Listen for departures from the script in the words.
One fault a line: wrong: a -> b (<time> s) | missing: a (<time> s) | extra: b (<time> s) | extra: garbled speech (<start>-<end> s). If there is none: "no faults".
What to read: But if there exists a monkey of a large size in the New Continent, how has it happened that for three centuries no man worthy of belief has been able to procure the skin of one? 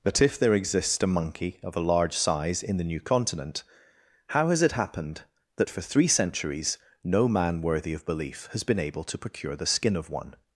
no faults